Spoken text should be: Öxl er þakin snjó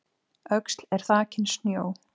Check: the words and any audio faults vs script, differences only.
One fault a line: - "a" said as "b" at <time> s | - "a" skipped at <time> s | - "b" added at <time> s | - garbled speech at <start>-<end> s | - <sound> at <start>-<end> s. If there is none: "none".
none